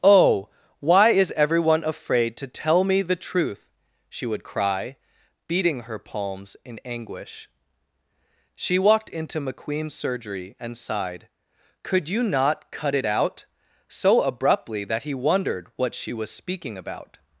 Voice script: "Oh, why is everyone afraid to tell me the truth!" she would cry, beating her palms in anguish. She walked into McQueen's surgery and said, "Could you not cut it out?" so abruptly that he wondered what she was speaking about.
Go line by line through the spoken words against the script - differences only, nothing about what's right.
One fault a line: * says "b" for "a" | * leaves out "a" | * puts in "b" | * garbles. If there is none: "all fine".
* says "sighed" for "said"